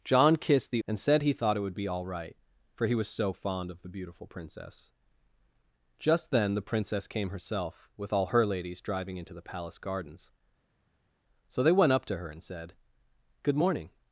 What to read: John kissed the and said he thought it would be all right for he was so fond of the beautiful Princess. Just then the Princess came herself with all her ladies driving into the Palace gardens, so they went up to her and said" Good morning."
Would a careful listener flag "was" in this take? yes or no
no